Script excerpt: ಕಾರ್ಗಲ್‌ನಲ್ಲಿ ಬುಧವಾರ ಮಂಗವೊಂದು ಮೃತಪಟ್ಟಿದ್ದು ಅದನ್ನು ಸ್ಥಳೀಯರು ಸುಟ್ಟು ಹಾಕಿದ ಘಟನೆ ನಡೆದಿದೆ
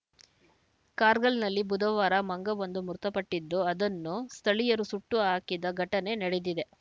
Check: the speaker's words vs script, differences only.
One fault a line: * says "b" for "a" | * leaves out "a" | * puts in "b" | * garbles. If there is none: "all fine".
all fine